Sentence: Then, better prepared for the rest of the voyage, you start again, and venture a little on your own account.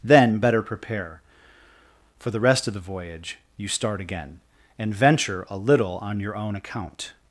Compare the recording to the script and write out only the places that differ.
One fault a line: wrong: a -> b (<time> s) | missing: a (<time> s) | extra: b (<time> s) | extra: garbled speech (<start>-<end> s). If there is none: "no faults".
wrong: prepared -> prepare (0.6 s)